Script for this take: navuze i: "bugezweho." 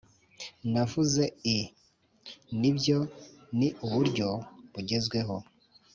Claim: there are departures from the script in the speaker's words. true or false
true